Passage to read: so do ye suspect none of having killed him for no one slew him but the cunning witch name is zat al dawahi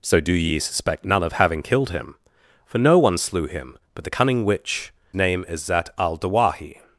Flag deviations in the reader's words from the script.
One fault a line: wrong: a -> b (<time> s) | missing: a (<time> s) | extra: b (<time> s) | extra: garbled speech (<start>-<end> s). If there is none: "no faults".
no faults